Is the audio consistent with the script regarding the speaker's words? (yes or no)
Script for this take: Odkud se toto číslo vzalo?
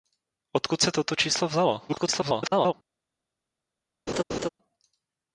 no